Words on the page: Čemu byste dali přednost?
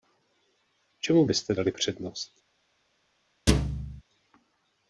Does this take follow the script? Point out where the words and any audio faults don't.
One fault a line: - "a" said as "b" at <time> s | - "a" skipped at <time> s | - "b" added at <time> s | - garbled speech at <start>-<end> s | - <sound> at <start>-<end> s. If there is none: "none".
- thud at 3.5-4.0 s